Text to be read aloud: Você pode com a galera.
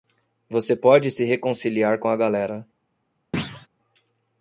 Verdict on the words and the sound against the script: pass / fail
fail